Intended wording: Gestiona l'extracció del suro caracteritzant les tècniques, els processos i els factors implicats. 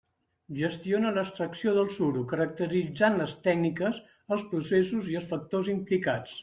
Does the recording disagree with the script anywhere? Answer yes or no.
no